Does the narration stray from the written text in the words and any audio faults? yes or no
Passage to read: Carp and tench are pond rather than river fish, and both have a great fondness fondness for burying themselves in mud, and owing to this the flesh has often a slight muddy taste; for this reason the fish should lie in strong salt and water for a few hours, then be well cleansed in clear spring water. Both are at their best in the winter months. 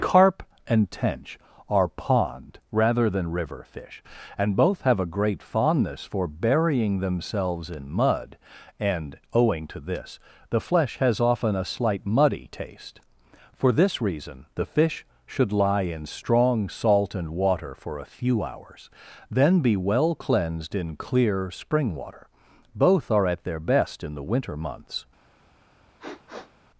yes